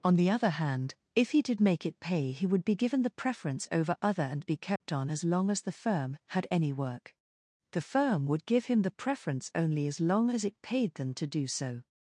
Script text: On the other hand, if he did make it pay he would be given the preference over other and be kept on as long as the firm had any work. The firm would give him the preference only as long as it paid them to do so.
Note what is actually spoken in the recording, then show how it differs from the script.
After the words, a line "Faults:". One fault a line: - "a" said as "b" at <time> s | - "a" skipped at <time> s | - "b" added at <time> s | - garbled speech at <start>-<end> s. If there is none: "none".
On the other hand, if he did make it pay he would be given the preference over other and be kept on as long as the firm had any work. The firm would give him the preference only as long as it paid them to do so.
Faults:
none